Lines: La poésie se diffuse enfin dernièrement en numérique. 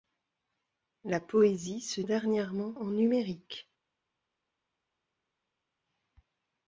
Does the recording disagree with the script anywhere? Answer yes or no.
yes